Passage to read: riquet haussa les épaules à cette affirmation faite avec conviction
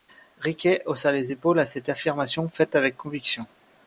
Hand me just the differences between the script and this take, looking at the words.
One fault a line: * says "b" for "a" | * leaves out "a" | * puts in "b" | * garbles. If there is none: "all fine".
all fine